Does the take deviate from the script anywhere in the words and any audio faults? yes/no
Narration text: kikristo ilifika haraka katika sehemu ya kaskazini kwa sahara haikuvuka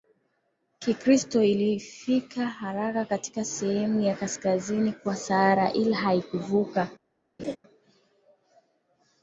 yes